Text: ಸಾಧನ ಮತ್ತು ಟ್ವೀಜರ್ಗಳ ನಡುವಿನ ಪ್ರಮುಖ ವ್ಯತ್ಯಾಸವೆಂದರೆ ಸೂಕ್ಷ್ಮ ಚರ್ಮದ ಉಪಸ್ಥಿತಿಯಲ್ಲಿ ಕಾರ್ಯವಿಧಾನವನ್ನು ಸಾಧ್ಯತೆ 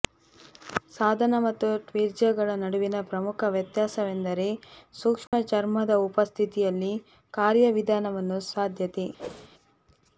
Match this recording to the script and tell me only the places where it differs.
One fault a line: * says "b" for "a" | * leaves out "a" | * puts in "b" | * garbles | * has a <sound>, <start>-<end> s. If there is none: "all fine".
* has a dropout, 5.3-5.3 s
* has a whoosh, 9.2-9.5 s